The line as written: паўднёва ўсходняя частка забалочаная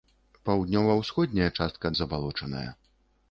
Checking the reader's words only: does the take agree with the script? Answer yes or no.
yes